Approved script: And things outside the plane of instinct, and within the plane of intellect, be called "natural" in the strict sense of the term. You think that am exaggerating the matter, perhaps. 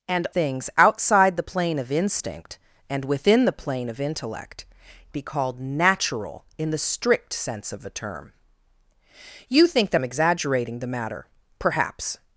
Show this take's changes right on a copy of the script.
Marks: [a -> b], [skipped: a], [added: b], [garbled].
And things outside the plane of instinct, and within the plane of intellect, be called "natural" in the strict sense of the term. You think that am exaggerating the matter, perhaps.